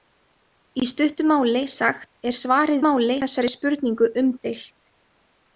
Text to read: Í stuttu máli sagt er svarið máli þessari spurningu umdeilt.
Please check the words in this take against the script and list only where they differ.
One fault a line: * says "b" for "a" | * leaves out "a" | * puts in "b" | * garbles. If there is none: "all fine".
all fine